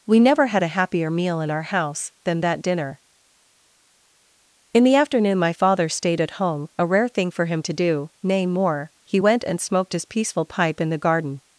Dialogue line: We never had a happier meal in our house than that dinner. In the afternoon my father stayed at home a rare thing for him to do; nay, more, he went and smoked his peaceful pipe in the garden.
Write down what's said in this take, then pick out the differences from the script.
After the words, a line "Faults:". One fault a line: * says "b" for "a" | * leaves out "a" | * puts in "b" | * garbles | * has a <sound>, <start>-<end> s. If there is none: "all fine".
We never had a happier meal in our house than that dinner. In the afternoon my father stayed at home a rare thing for him to do; nay, more, he went and smoked his peaceful pipe in the garden.
Faults:
all fine